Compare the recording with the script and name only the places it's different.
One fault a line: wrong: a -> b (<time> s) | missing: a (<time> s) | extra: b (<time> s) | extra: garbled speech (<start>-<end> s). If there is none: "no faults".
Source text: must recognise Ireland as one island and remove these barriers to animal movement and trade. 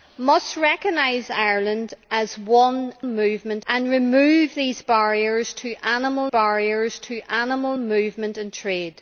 wrong: island -> movement (3.0 s)
extra: barriers to animal (6.3 s)